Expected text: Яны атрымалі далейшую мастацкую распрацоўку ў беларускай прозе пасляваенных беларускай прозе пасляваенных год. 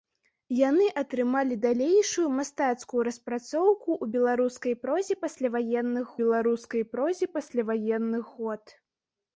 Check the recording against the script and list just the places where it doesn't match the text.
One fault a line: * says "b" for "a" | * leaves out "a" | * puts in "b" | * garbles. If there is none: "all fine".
all fine